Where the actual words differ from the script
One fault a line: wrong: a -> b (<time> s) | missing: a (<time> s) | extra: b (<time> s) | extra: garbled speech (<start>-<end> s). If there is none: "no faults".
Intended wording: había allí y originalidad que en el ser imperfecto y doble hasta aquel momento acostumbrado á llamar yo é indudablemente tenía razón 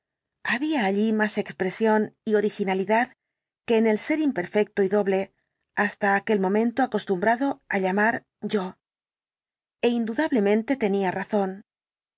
extra: más expresión (1.1 s)